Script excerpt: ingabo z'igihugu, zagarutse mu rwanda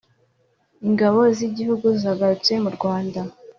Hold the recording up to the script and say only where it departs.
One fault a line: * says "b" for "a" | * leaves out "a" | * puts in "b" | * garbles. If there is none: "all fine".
all fine